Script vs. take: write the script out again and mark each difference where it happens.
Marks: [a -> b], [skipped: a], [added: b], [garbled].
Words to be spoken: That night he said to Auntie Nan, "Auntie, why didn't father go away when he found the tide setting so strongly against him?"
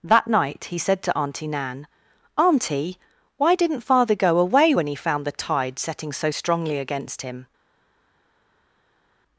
That night he said to Auntie Nan, "Auntie, why didn't father go away when he found the tide setting so strongly against him?"